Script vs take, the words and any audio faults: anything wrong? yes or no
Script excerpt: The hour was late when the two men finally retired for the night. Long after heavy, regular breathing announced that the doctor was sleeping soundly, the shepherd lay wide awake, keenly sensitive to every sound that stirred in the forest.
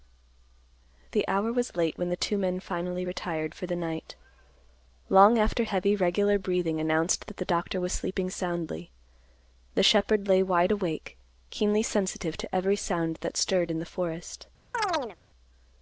yes